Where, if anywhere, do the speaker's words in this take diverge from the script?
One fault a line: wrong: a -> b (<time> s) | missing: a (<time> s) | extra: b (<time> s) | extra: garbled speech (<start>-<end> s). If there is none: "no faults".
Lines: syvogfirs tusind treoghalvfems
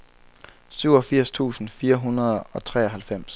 extra: fire hundrede og (1.7 s)